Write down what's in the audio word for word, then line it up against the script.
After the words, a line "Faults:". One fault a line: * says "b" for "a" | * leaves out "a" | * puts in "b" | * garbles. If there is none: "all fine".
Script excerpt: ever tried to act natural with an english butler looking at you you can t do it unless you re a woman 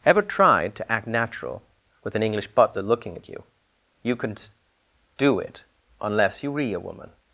ever tried to act natural with an english butler looking at you you can do it unless you re a woman
Faults:
* leaves out "t"